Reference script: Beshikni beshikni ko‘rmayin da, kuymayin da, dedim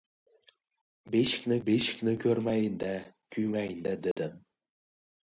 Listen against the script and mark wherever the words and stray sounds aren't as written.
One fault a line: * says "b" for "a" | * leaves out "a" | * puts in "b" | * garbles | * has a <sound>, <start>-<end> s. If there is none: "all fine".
* has a dropout, 4.1-4.2 s